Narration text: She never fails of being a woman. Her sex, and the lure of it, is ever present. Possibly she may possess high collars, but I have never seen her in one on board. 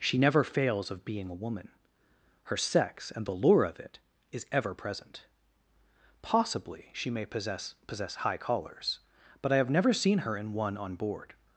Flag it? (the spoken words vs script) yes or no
yes